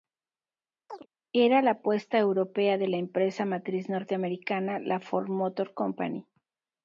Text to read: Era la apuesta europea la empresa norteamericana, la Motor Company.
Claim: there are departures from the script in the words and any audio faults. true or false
true